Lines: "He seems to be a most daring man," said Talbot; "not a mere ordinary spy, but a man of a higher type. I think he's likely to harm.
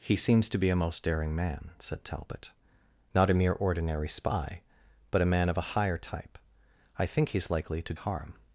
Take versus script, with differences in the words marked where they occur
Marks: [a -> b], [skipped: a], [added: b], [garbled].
"He seems to be a most daring man," said Talbot; "not a mere ordinary spy, but a man of a higher type. I think he's likely to harm.